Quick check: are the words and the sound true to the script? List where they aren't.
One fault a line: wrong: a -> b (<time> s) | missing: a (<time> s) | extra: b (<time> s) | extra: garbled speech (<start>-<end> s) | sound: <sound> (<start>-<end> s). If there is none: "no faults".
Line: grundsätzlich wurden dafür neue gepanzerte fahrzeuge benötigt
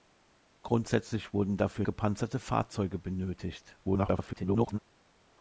missing: neue (1.9 s)
extra: garbled speech (3.8-4.8 s)